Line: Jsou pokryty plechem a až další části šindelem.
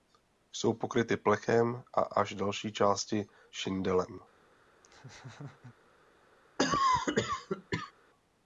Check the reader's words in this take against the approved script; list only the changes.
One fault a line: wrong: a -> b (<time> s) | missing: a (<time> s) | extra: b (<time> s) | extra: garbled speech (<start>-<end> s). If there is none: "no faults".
no faults